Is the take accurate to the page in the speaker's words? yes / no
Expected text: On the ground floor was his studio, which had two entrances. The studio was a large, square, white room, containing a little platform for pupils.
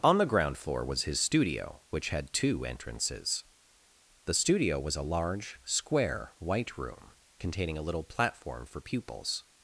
yes